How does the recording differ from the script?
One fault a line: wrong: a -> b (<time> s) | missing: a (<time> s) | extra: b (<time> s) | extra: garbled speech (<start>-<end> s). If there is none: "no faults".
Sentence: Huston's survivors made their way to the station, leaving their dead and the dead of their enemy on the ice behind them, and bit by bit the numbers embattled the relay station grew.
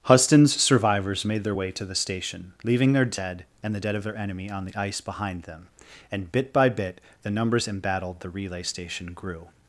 no faults